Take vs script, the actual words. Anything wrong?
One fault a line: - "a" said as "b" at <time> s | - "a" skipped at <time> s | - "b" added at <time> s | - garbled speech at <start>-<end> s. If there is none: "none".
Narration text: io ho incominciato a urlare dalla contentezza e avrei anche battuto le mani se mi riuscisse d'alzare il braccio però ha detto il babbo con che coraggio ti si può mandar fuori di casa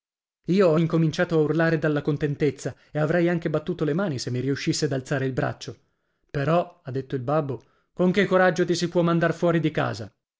none